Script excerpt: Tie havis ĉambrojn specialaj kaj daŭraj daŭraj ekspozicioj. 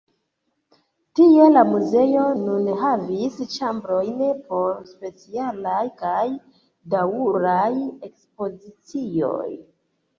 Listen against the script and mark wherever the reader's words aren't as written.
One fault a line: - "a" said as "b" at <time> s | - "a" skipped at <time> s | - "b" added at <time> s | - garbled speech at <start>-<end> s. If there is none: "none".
- "la muzeo nun" added at 1.5 s
- "por" added at 4.5 s
- "daŭraj" skipped at 7.7 s